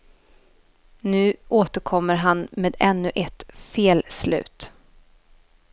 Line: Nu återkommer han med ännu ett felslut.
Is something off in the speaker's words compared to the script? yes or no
no